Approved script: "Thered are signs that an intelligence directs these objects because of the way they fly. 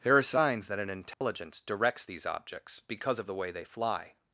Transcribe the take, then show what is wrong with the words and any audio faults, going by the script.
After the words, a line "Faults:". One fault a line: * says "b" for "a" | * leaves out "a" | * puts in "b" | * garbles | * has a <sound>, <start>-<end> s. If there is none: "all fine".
"There are signs that an intelligence directs these objects because of the way they fly.
Faults:
* says "There" for "Thered"
* has a dropout, 1.1-1.2 s